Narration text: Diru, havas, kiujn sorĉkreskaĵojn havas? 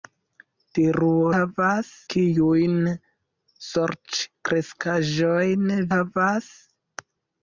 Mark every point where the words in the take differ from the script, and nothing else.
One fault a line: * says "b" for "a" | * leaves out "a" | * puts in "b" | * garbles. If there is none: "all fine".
all fine